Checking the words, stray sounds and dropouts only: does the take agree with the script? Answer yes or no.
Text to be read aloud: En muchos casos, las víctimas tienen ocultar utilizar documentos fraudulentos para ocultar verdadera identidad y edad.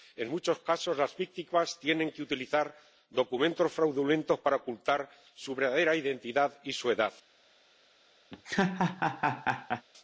no